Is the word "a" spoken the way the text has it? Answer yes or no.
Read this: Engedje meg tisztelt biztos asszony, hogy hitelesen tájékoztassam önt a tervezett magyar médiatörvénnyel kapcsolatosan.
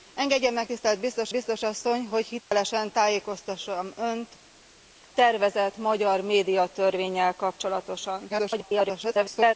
no